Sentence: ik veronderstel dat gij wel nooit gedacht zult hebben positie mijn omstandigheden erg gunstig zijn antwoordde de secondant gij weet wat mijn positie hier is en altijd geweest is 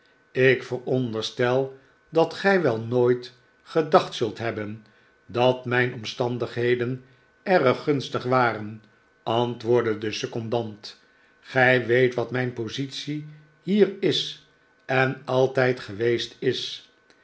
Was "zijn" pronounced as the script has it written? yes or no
no